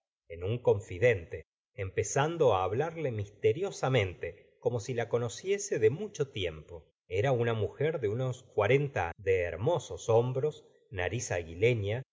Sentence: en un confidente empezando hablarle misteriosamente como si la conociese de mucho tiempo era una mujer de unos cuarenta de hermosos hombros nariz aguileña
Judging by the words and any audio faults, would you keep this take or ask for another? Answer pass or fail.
pass